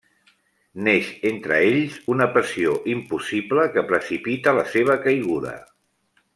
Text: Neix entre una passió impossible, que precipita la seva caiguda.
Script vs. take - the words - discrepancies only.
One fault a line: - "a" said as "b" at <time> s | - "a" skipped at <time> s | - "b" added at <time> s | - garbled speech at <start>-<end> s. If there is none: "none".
- "ells" added at 1.6 s